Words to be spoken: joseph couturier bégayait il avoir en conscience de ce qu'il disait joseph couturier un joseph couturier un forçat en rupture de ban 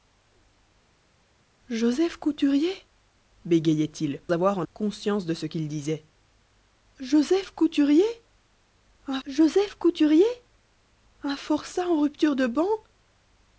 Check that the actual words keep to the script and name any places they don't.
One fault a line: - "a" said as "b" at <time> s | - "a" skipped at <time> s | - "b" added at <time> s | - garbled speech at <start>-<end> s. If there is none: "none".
none